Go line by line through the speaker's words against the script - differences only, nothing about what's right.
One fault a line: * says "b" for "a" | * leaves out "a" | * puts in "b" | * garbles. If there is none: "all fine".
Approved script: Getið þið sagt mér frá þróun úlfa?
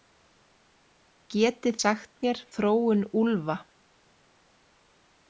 * leaves out "þið"
* leaves out "frá"